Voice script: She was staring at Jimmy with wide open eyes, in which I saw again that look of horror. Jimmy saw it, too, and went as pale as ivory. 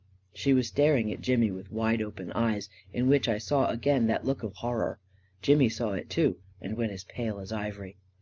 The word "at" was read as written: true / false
true